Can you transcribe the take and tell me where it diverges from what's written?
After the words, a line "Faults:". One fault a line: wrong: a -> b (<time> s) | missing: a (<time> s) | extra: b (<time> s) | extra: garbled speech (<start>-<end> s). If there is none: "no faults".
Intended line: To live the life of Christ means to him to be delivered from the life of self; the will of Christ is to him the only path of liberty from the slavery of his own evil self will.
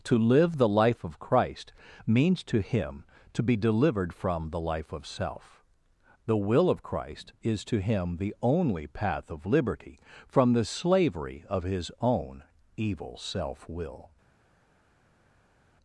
To live the life of Christ means to him to be delivered from the life of self; the will of Christ is to him the only path of liberty from the slavery of his own evil self will.
Faults:
no faults